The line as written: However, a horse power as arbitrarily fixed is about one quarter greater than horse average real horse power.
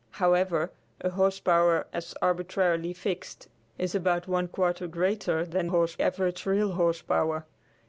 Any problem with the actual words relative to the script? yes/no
no